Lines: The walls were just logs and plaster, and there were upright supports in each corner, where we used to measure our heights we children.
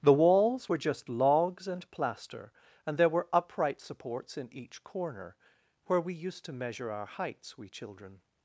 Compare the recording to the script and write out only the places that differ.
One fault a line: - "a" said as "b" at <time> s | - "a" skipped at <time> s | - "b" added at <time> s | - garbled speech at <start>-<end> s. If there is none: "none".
none